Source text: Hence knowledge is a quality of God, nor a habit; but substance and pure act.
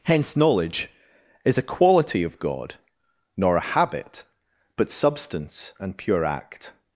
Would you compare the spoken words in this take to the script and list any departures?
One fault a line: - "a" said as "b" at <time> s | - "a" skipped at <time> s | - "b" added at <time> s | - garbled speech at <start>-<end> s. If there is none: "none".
none